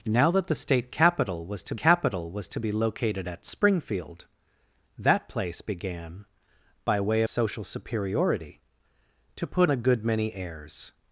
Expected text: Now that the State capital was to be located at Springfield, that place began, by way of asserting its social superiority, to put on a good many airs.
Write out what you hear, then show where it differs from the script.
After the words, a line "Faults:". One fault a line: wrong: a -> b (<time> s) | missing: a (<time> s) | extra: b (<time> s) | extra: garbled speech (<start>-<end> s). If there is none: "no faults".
Now that the State capital was to capital was to be located at Springfield, that place began, by way social superiority, to put a good many airs.
Faults:
extra: capital was to (1.8 s)
missing: of asserting its (7.2 s)
missing: on (9.7 s)